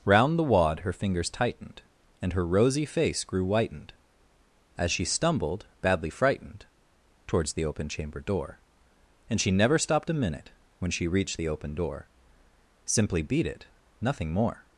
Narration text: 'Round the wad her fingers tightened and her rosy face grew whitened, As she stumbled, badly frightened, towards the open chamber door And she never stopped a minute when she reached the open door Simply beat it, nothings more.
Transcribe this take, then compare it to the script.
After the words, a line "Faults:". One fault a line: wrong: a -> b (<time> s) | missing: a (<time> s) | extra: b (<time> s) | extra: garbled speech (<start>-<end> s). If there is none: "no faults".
'Round the wad her fingers tightened and her rosy face grew whitened, As she stumbled, badly frightened, towards the open chamber door And she never stopped a minute when she reached the open door Simply beat it, nothing more.
Faults:
wrong: nothings -> nothing (14.0 s)